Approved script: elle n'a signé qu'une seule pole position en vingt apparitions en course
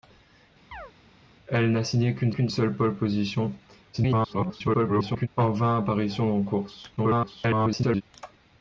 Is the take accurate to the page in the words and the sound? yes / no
no